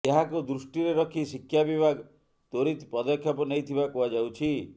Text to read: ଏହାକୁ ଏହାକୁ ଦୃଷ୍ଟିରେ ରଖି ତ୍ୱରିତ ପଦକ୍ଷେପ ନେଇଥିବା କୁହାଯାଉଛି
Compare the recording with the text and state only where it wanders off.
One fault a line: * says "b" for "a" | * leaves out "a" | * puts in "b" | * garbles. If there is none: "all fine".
* leaves out "ଏହାକୁ"
* puts in "ଶିକ୍ଷା ବିଭାଗ"